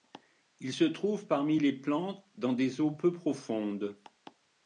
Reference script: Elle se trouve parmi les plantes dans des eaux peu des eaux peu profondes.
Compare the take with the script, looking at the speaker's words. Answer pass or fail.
fail